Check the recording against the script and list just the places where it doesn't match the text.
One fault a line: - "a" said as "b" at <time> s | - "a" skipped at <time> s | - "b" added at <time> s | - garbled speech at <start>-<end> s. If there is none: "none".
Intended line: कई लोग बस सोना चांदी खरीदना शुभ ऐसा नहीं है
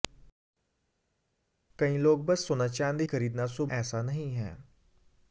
none